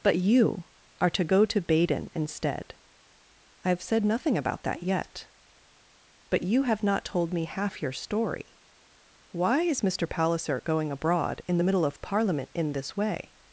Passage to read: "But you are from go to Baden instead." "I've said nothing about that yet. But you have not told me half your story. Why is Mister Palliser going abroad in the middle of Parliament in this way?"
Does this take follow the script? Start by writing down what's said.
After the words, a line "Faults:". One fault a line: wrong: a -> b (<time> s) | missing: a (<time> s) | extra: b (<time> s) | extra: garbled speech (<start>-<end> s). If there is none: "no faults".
"But you are to go to Baden instead." "I've said nothing about that yet. But you have not told me half your story. Why is Mister Palliser going abroad in the middle of Parliament in this way?"
Faults:
wrong: from -> to (1.1 s)